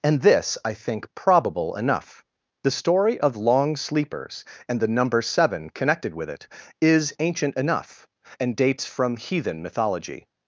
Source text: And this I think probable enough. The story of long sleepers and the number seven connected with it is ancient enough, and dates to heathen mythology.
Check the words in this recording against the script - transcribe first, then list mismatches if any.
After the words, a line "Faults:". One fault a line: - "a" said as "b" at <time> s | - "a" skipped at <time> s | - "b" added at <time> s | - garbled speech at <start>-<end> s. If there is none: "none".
And this I think probable enough. The story of long sleepers and the number seven connected with it is ancient enough, and dates from heathen mythology.
Faults:
- "to" said as "from" at 8.8 s